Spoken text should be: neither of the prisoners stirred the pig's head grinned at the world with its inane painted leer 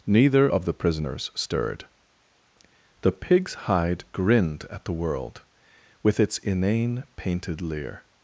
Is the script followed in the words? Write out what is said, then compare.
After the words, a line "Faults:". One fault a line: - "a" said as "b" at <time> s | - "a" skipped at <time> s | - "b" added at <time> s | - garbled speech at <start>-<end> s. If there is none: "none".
neither of the prisoners stirred the pig's hide grinned at the world with its inane painted leer
Faults:
- "head" said as "hide" at 3.5 s